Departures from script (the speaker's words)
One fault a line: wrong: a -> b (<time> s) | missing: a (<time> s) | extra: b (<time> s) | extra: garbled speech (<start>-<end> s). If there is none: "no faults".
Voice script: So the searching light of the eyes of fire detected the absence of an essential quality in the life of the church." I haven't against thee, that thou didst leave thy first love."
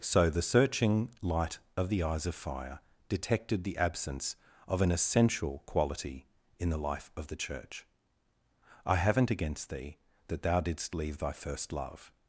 no faults